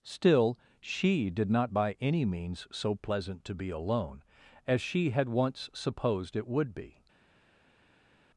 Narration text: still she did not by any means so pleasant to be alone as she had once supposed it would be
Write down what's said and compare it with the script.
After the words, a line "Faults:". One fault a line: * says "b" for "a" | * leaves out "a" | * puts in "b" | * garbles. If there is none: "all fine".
still she did not by any means so pleasant to be alone as she had once supposed it would be
Faults:
all fine